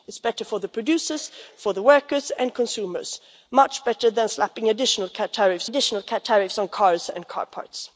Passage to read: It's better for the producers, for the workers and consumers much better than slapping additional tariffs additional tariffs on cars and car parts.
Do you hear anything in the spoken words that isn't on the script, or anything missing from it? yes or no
no